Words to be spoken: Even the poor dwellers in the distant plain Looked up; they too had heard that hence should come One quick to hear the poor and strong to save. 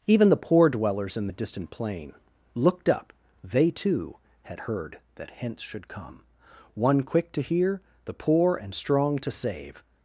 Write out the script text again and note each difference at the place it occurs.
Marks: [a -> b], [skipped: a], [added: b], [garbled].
Even the poor dwellers in the distant plain Looked up; they too had heard that hence should come One quick to hear the poor and strong to save.